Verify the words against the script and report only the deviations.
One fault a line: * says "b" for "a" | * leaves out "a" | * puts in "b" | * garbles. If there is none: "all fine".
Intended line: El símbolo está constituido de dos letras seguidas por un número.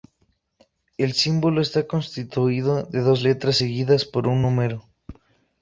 all fine